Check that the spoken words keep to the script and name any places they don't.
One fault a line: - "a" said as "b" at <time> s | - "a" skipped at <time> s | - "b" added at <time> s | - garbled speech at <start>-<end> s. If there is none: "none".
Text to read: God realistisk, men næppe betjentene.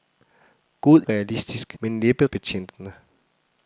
none